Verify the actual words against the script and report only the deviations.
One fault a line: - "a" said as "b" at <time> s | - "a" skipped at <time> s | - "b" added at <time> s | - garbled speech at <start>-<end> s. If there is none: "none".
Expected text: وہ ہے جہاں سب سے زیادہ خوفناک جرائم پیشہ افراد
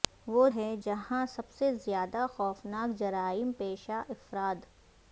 none